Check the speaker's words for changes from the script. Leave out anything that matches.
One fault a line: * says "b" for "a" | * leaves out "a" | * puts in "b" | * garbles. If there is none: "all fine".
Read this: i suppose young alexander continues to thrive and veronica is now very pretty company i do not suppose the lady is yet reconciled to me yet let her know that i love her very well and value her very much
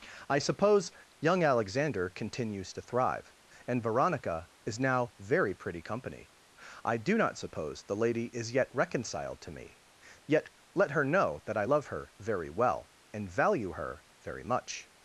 all fine